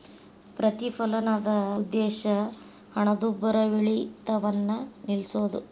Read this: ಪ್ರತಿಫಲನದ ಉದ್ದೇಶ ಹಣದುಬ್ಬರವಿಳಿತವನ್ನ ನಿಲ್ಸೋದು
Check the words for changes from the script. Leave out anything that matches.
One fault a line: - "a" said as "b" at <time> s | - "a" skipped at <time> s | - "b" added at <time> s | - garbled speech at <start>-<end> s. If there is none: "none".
none